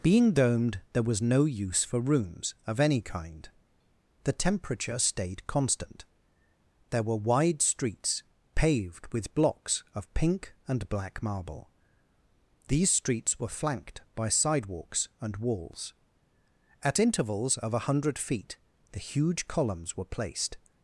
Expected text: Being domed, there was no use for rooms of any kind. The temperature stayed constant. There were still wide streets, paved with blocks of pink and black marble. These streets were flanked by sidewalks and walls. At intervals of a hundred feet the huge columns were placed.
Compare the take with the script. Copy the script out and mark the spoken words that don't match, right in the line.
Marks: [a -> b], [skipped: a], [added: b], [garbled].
Being domed, there was no use for rooms of any kind. The temperature stayed constant. There were [skipped: still] wide streets, paved with blocks of pink and black marble. These streets were flanked by sidewalks and walls. At intervals of a hundred feet the huge columns were placed.